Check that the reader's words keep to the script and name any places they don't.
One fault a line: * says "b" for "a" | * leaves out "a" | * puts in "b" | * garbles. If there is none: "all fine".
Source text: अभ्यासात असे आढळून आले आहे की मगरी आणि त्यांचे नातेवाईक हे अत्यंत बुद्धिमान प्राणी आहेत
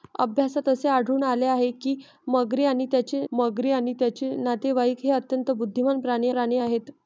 * puts in "मगरी आणि त्यांचे"
* puts in "प्राणी"